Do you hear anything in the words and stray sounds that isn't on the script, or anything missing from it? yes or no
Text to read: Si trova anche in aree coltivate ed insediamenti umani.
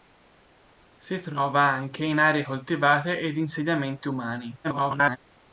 yes